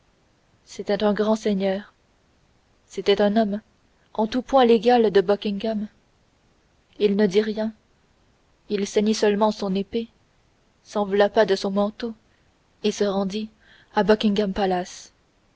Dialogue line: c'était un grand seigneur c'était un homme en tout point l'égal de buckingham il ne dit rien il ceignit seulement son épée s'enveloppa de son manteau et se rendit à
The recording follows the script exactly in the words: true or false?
true